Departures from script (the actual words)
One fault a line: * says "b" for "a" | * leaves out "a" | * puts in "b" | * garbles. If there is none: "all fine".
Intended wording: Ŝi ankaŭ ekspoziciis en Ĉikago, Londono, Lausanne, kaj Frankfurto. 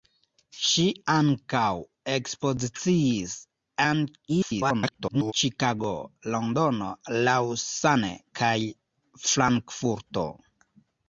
* garbles